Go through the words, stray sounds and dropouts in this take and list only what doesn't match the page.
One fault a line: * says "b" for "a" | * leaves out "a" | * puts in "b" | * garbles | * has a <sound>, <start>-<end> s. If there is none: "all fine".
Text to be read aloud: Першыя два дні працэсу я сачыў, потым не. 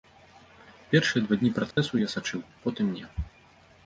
* has a dropout, 1.7-1.8 s